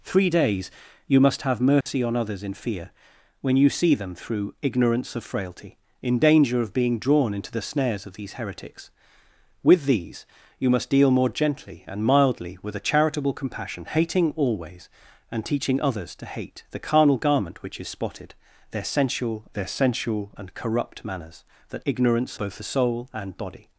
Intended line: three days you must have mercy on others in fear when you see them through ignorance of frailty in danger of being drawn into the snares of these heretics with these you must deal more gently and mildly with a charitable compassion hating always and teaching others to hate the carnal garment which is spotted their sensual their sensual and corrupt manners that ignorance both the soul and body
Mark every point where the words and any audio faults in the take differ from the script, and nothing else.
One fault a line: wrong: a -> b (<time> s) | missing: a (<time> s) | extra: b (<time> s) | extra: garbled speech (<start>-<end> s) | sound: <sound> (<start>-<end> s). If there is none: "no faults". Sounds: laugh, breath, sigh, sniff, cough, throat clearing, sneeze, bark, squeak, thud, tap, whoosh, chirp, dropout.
sound: dropout (1.8-1.9 s)